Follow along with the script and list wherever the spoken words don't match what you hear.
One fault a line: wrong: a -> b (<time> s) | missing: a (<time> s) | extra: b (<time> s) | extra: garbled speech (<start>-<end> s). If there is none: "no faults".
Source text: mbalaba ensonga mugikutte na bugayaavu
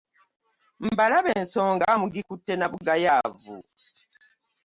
no faults